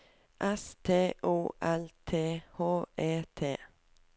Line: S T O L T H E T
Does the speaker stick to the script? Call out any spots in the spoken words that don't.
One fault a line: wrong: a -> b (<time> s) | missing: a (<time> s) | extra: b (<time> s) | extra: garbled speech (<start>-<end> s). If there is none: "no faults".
no faults